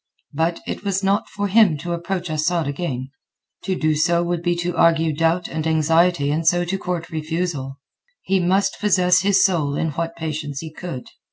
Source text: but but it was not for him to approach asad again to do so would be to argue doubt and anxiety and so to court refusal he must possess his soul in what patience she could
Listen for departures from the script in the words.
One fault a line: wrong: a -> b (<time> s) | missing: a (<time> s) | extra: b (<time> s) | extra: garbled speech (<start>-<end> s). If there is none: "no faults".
missing: but (0.6 s)
wrong: she -> he (10.6 s)